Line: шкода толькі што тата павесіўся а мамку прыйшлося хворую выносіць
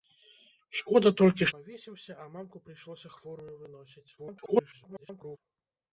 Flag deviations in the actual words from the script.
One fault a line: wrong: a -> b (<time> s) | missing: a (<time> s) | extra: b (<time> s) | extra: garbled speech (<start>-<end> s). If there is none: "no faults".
missing: што тата (1.5 s)
extra: garbled speech (4.2-5.4 s)